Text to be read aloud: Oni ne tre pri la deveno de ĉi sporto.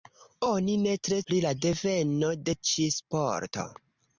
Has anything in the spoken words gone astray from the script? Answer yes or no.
no